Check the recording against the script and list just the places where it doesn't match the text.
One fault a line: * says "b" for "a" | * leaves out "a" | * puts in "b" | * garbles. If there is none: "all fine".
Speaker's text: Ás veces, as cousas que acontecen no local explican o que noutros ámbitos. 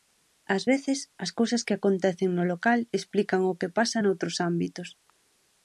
* puts in "pasa"